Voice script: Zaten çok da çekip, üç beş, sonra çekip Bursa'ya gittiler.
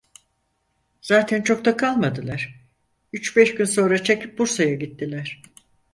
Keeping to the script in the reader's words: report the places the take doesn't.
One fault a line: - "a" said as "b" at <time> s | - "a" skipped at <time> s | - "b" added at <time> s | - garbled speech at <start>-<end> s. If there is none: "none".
- "çekip" said as "kalmadılar" at 1.8 s
- "gün" added at 3.5 s